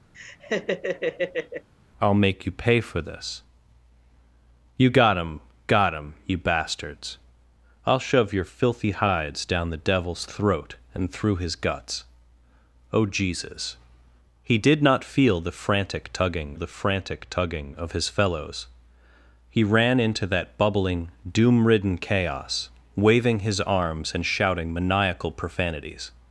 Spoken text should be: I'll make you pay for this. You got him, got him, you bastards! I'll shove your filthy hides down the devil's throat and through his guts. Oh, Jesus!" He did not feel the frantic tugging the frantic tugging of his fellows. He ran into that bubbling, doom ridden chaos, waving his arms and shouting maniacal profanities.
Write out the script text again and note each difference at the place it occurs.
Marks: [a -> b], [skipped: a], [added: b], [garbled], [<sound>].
[laugh] I'll make you pay for this. You got him, got him, you bastards! I'll shove your filthy hides down the devil's throat and through his guts. Oh, Jesus!" He did not feel the frantic tugging the frantic tugging of his fellows. He ran into that bubbling, doom ridden chaos, waving his arms and shouting maniacal profanities.